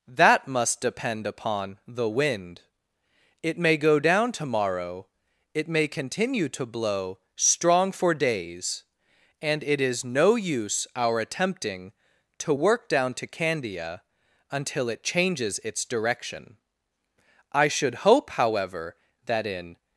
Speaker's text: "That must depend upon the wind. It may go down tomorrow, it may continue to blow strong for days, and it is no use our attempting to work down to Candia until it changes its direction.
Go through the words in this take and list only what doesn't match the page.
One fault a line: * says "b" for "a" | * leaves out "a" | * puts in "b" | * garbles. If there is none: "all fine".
* puts in "I should hope however that in"